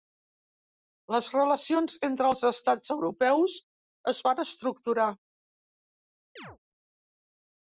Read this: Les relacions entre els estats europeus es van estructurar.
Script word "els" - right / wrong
right